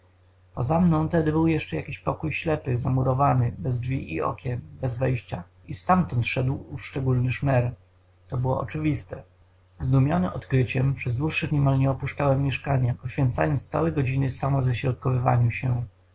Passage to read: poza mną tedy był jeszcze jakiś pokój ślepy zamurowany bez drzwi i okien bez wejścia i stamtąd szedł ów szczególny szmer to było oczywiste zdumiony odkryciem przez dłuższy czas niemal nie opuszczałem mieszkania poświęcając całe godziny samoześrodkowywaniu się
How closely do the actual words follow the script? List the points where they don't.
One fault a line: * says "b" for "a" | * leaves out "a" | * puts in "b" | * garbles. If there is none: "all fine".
* leaves out "czas"